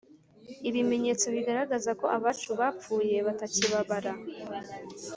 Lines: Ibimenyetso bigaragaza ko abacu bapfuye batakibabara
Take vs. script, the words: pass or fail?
pass